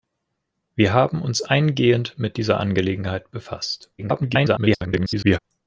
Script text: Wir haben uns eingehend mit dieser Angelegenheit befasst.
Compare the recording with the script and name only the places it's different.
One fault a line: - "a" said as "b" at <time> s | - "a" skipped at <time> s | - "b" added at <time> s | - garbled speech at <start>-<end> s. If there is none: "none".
- garbled speech at 4.0-5.4 s